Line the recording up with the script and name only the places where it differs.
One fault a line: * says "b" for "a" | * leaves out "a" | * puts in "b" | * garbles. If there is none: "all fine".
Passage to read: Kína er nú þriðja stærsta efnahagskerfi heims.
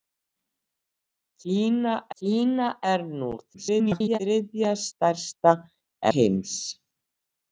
* puts in "kína"
* garbles
* leaves out "efnahagskerfi"